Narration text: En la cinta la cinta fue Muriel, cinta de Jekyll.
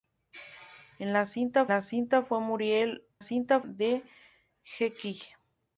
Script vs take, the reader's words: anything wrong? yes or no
no